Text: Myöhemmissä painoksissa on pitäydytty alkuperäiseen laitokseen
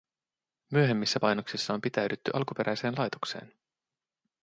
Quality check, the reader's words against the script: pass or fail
pass